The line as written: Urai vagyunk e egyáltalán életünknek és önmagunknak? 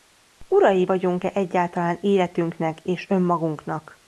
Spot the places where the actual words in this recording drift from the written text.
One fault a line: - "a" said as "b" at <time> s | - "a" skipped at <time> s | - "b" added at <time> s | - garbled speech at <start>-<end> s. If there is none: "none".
none